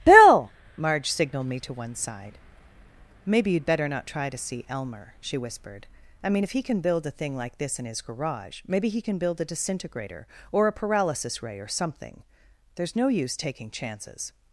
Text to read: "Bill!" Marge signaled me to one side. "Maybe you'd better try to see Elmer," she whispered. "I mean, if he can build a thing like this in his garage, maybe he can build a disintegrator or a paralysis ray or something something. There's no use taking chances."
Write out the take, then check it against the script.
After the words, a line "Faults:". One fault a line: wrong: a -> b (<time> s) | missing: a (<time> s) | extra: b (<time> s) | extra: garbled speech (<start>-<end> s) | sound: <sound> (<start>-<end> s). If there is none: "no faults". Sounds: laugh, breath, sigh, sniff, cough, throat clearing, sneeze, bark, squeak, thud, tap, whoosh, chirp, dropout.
"Bill!" Marge signaled me to one side. "Maybe you'd better not try to see Elmer," she whispered. "I mean, if he can build a thing like this in his garage, maybe he can build a disintegrator or a paralysis ray or something. There's no use taking chances."
Faults:
extra: not (3.9 s)
missing: something (12.2 s)